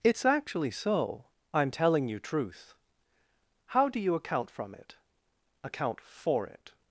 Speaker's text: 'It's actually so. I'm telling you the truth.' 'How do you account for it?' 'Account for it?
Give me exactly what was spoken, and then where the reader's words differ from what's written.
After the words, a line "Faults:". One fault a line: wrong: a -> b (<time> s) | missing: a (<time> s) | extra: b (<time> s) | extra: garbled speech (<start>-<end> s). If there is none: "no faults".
'It's actually so. I'm telling you truth.' 'How do you account from it?' 'Account for it?
Faults:
missing: the (2.2 s)
wrong: for -> from (4.5 s)